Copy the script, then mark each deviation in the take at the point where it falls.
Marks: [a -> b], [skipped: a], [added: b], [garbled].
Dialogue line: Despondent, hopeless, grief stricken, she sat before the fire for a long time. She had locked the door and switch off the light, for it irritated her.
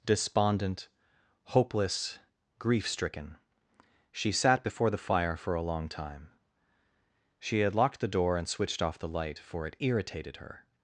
Despondent, hopeless, grief stricken, she sat before the fire for a long time. She had locked the door and [switch -> switched] off the light, for it irritated her.